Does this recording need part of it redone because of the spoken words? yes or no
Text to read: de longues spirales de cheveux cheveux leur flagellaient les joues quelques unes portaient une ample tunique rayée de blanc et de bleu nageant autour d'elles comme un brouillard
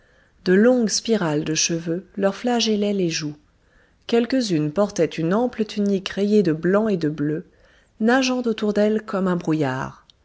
yes